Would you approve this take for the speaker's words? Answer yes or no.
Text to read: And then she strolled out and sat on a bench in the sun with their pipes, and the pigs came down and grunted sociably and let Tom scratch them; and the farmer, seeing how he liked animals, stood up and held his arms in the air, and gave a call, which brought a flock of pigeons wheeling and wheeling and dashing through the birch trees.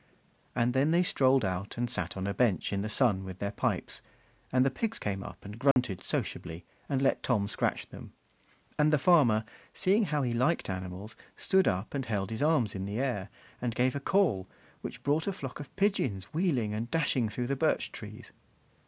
no